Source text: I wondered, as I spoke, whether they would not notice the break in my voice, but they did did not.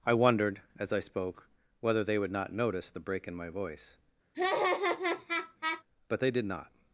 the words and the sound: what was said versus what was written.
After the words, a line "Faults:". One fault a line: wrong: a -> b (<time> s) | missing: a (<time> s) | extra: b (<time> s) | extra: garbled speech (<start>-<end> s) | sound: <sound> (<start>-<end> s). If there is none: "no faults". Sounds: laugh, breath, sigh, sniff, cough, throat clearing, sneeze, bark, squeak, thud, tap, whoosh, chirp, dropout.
I wondered, as I spoke, whether they would not notice the break in my voice, but they did not.
Faults:
sound: laugh (4.3-5.8 s)
missing: did (6.4 s)